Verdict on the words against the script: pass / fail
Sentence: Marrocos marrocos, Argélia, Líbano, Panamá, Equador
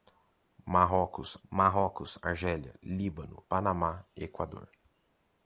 pass